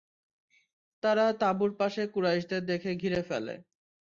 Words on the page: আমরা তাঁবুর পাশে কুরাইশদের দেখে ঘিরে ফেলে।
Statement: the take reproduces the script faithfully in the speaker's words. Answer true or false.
false